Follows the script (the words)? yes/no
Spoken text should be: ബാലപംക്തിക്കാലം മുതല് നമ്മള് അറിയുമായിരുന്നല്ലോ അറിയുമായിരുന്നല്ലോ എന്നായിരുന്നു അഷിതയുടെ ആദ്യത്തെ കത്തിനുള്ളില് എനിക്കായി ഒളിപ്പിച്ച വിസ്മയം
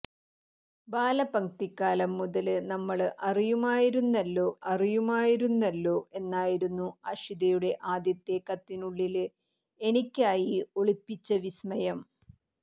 yes